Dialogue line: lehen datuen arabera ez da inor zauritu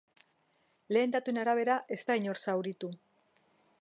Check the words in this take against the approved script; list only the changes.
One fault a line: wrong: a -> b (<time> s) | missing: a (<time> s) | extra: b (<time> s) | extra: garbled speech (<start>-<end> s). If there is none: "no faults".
no faults